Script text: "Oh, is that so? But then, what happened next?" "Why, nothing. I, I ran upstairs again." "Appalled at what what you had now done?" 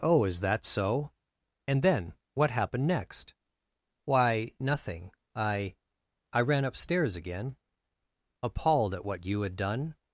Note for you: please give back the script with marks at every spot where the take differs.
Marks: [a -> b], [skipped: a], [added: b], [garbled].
"Oh, is that so? [But -> And] then, what happened next?" "Why, nothing. I, I ran upstairs again." "Appalled at what [skipped: what] you had [skipped: now] done?"